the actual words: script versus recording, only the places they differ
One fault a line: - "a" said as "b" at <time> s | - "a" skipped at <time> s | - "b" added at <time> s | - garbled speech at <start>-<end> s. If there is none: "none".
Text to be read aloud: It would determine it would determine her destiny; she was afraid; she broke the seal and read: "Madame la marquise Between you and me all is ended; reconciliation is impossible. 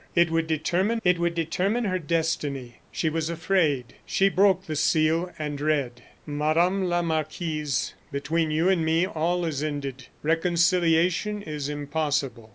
none